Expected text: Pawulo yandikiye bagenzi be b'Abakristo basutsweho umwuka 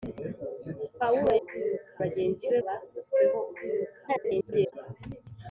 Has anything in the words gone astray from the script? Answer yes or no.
yes